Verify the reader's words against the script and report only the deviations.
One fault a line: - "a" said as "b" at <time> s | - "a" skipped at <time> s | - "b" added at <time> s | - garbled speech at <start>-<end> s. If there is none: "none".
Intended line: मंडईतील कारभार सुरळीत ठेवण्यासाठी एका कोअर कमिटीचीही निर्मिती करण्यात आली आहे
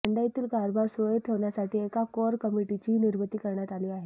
none